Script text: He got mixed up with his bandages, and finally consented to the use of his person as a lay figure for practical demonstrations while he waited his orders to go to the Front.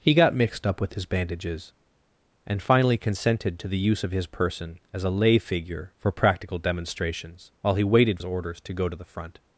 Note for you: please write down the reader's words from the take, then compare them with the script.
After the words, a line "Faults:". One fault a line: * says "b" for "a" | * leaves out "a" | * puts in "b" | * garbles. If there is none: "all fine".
He got mixed up with his bandages, and finally consented to the use of his person as a lay figure for practical demonstrations while he waited his orders to go to the Front.
Faults:
all fine